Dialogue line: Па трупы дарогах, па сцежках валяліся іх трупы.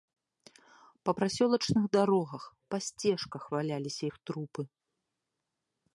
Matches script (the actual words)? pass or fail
fail